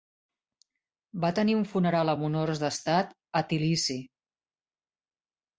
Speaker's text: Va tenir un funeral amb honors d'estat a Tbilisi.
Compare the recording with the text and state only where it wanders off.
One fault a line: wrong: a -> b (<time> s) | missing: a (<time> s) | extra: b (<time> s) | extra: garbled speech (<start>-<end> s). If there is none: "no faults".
no faults